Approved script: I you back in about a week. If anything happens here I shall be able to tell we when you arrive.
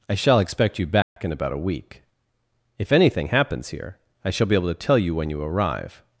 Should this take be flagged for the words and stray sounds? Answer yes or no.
yes